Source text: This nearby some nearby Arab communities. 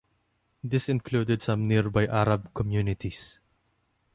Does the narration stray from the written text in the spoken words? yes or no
yes